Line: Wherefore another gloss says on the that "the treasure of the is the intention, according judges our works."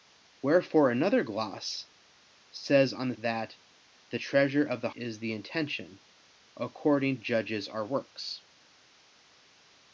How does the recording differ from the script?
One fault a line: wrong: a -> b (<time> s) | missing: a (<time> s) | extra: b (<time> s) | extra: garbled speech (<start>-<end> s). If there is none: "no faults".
no faults